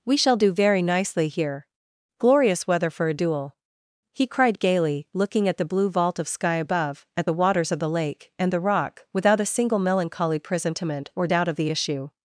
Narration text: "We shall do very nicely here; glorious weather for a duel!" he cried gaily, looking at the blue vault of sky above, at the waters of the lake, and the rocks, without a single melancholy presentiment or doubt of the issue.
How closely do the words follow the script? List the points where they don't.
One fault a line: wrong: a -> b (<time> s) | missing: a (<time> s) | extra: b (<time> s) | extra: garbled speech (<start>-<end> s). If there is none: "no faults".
wrong: rocks -> rock (8.6 s)